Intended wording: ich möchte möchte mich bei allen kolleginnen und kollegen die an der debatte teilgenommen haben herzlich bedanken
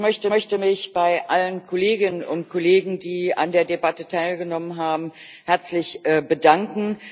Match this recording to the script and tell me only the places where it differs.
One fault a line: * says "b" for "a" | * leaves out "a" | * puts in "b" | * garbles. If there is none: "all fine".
all fine